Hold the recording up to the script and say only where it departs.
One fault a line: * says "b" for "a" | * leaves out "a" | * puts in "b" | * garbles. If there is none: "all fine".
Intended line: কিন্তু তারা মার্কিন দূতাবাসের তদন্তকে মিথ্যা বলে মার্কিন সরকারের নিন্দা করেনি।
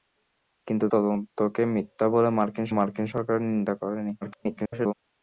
* leaves out "তারা মার্কিন দূতাবাসের"
* puts in "মার্কিন"
* garbles